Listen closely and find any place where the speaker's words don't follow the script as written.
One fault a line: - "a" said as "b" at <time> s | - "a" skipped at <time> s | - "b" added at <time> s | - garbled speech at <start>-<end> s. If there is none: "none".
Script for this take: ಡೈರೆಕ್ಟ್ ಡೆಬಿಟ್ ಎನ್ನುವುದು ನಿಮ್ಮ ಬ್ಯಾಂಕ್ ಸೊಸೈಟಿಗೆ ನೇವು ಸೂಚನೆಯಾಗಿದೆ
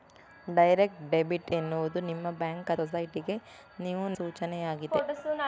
none